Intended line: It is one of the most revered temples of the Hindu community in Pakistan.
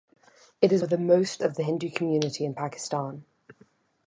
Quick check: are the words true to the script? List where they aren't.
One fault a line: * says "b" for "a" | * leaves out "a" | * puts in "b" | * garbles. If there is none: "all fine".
* leaves out "one"
* leaves out "revered temples"